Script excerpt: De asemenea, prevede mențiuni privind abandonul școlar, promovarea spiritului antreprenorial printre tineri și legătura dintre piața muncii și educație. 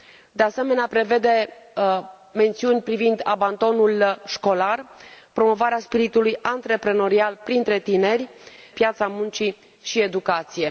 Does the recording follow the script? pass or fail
fail